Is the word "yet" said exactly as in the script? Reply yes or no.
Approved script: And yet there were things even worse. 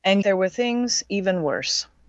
no